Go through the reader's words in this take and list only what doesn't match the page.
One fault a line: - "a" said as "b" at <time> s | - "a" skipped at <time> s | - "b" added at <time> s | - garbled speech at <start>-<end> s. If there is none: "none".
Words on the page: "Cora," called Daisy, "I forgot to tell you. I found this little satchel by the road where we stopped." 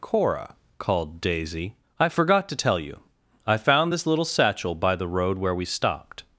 none